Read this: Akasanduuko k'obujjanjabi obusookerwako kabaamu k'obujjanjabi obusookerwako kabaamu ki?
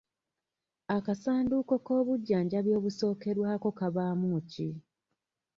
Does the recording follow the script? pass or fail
fail